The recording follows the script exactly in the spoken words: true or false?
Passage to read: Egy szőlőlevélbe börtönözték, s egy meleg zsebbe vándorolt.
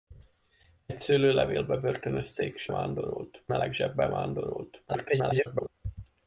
false